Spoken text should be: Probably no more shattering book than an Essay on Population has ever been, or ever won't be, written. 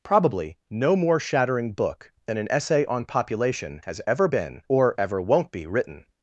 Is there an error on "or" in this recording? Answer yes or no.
no